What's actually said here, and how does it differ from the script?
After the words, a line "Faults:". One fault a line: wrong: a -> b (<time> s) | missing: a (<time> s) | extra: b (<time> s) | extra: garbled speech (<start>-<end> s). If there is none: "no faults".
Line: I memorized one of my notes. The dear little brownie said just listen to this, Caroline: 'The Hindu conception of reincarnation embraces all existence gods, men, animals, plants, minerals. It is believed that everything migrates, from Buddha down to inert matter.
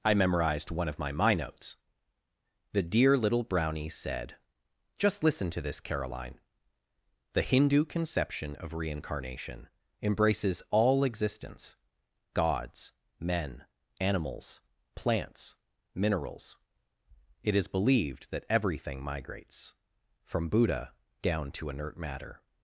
I memorized one of my my notes. The dear little brownie said just listen to this, Caroline: 'The Hindu conception of reincarnation embraces all existence gods, men, animals, plants, minerals. It is believed that everything migrates, from Buddha down to inert matter.
Faults:
extra: my (1.1 s)